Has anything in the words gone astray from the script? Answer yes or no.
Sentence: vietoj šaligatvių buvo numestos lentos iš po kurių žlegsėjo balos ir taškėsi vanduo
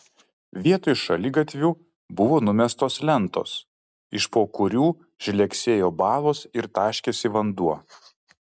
no